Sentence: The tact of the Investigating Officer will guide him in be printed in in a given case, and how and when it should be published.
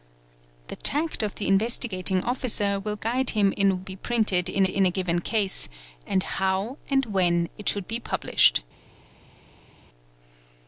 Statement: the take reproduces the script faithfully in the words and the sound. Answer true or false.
true